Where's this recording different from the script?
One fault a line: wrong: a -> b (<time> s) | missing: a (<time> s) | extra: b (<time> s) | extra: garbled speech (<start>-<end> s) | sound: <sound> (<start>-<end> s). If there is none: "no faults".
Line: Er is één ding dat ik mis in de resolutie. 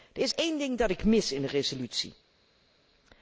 no faults